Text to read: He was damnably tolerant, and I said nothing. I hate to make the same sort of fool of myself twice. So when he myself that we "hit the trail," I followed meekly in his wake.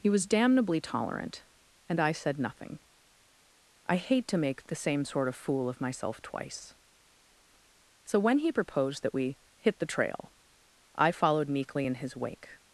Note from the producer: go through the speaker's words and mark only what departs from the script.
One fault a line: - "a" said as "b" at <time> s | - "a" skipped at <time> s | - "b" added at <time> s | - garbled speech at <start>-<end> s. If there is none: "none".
- "myself" said as "proposed" at 8.5 s